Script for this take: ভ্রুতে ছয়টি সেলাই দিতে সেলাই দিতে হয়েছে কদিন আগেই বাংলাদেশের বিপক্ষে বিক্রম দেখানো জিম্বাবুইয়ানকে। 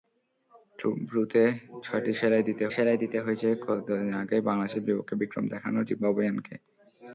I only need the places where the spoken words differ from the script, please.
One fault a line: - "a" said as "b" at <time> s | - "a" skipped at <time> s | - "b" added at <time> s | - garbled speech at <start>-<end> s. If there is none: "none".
none